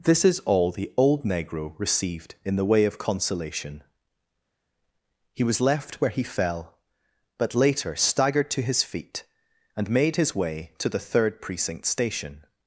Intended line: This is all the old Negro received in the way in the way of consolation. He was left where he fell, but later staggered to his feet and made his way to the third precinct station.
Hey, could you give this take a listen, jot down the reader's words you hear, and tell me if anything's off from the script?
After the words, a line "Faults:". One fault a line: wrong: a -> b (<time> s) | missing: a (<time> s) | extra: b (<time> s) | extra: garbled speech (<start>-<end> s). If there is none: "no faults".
This is all the old Negro received in the way of consolation. He was left where he fell, but later staggered to his feet and made his way to the third precinct station.
Faults:
missing: in the way (2.9 s)